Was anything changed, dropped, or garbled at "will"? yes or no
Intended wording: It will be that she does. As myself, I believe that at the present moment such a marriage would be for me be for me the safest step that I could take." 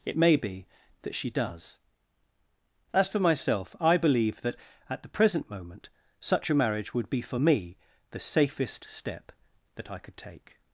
yes